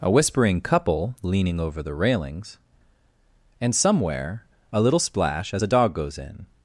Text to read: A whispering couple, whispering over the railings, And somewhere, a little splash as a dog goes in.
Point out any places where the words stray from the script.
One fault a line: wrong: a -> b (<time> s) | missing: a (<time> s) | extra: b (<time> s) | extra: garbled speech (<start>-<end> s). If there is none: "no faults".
wrong: whispering -> leaning (1.2 s)